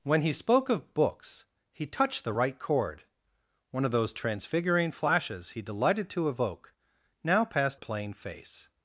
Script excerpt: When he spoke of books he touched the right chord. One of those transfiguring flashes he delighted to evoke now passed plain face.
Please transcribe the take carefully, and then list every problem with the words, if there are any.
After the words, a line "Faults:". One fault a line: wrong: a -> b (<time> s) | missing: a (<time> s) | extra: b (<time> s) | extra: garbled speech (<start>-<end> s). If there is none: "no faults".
When he spoke of books he touched the right chord. One of those transfiguring flashes he delighted to evoke now passed plain face.
Faults:
no faults